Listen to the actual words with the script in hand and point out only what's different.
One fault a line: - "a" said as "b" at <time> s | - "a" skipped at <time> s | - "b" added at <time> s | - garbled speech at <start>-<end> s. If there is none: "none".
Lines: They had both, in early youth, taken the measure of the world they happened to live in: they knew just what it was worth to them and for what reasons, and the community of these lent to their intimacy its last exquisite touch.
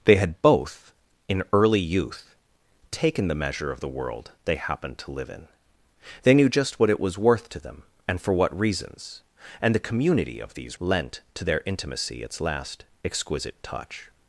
none